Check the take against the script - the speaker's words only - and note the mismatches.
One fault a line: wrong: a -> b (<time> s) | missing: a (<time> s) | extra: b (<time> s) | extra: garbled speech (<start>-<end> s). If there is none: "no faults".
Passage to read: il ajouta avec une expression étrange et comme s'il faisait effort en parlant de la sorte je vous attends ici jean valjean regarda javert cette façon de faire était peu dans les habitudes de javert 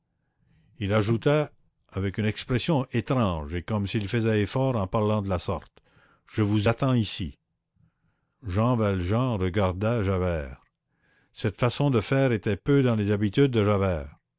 no faults